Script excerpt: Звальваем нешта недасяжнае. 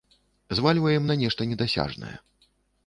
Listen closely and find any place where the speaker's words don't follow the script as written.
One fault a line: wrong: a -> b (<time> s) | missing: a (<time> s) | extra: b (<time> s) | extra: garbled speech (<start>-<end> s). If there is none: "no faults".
extra: на (1.1 s)